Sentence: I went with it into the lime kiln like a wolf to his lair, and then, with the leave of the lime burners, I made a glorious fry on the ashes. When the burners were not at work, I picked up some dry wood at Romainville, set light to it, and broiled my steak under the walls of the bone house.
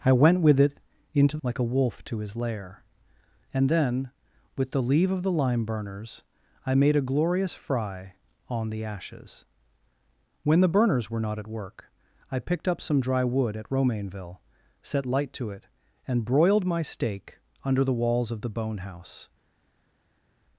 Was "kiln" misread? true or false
true